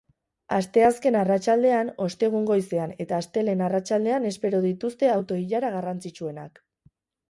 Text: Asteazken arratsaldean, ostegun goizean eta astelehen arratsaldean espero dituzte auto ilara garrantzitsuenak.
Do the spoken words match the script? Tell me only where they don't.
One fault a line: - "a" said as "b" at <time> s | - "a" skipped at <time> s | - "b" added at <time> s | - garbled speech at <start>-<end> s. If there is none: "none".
none